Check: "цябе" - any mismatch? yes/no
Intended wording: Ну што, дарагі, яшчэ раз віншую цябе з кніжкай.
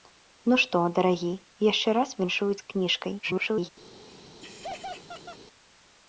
yes